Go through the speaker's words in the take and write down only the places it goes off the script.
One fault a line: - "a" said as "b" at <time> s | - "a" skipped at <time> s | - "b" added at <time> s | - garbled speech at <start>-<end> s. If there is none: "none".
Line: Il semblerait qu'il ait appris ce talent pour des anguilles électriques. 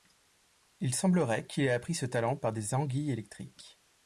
- "pour" said as "par" at 2.4 s